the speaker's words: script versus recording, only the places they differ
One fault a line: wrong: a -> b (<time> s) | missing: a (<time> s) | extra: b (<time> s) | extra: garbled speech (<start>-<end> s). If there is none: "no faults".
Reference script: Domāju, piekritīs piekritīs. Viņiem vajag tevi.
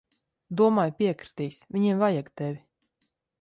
missing: piekritīs (1.6 s)